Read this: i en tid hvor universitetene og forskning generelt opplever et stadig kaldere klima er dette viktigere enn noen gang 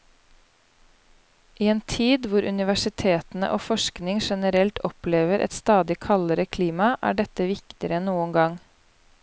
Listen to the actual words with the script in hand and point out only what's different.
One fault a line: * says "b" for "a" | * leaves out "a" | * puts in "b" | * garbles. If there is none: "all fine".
all fine